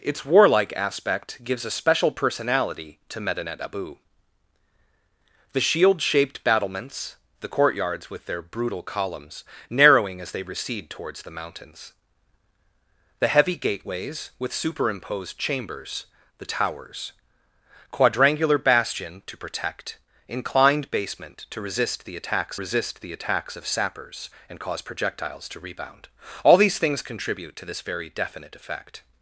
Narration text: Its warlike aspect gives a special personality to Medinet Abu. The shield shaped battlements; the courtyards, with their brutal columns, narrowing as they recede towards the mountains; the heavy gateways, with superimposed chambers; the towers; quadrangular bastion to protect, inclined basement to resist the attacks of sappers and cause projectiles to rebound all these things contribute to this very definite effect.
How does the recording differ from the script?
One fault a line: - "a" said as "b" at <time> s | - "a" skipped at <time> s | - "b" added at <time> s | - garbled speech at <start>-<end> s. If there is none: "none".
- "resist the attacks" added at 22.6 s